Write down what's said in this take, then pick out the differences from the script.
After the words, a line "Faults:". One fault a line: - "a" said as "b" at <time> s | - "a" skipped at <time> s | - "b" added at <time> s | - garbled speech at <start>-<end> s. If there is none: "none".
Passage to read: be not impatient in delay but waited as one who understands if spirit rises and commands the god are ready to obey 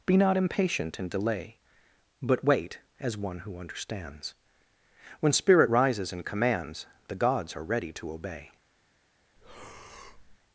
be not impatient in delay but wait as one who understands when spirit rises and commands the gods are ready to obey
Faults:
- "waited" said as "wait" at 2.4 s
- "if" said as "when" at 5.2 s
- "god" said as "gods" at 7.1 s